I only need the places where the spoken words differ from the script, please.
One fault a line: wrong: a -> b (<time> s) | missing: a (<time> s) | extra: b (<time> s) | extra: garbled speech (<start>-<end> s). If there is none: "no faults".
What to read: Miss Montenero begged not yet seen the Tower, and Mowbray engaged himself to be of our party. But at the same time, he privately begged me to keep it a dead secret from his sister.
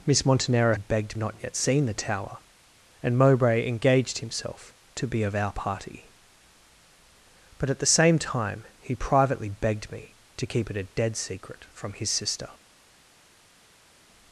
no faults